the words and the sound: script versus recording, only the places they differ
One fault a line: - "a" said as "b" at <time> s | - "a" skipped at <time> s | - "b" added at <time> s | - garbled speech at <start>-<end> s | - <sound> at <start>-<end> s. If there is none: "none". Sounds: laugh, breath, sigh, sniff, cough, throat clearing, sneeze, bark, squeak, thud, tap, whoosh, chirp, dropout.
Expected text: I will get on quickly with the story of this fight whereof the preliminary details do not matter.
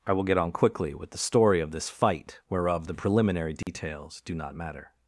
- dropout at 3.6-3.7 s